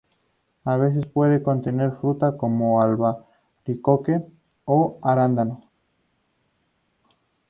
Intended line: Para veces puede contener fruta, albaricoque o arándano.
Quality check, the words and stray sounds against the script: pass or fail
fail